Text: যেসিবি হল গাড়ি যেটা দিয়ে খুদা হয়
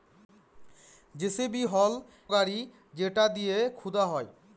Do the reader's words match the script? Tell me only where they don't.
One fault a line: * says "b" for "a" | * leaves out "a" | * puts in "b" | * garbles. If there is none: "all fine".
all fine